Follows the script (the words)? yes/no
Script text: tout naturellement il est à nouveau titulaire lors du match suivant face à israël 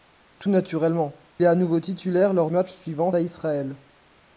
no